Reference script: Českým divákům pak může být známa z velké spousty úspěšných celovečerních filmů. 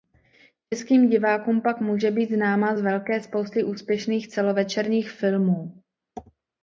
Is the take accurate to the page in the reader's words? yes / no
yes